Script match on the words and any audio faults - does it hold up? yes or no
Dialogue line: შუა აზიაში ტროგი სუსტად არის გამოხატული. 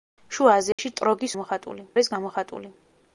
no